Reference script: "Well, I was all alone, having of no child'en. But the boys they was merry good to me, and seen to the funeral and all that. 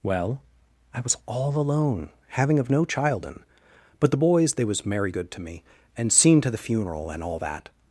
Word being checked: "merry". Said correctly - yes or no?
yes